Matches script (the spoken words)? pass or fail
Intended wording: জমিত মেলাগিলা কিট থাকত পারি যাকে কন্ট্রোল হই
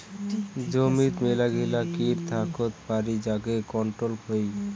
pass